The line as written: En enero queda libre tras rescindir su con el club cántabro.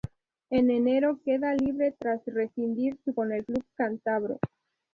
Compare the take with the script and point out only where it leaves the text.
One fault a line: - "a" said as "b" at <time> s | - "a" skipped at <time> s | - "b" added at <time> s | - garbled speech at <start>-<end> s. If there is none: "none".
none